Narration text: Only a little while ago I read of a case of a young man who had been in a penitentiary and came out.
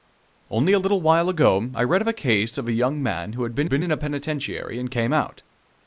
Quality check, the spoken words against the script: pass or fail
fail